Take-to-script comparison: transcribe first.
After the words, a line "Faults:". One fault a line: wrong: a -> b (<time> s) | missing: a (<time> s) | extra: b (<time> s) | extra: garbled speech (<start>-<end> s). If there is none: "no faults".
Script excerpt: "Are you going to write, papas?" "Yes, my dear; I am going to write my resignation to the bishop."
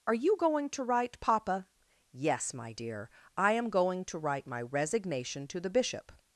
"Are you going to write, papa?" "Yes, my dear; I am going to write my resignation to the bishop."
Faults:
wrong: papas -> papa (1.2 s)